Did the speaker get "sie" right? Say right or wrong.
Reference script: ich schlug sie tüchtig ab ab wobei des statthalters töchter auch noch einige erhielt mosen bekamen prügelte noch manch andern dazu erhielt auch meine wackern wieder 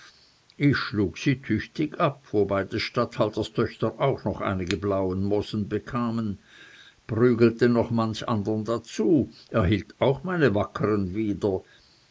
right